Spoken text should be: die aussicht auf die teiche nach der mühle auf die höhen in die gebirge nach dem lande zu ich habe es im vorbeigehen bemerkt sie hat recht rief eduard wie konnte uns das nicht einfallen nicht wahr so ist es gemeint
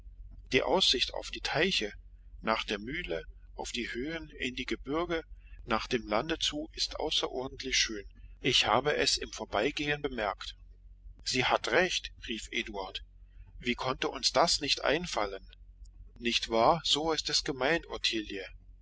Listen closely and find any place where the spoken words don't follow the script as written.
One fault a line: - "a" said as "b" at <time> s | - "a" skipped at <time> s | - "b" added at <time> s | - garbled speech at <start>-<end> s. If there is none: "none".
- "ist außerordentlich schön" added at 6.7 s